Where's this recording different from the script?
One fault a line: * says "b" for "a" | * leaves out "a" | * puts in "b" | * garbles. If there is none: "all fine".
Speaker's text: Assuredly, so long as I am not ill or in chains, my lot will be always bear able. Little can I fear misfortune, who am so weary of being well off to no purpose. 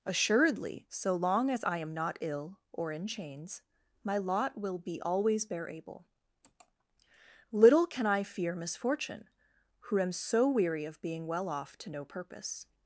all fine